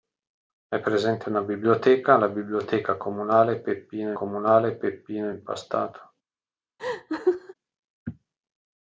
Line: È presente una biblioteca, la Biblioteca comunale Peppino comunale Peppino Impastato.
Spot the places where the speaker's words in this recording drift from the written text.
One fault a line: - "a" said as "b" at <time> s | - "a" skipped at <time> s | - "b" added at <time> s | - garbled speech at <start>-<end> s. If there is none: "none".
none